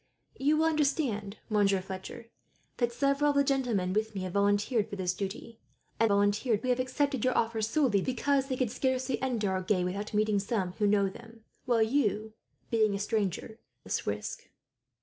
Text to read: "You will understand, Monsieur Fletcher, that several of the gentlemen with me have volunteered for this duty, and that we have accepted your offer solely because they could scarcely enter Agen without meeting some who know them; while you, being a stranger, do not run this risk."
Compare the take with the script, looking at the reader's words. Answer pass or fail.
fail